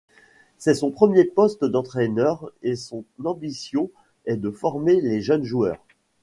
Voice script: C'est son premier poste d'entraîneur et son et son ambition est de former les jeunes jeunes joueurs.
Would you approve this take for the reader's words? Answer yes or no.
no